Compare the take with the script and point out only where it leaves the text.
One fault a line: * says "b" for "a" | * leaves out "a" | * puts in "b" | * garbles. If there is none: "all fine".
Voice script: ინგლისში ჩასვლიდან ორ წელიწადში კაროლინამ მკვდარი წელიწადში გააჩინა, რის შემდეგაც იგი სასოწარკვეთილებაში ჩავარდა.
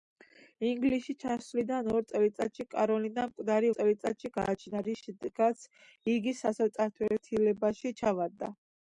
all fine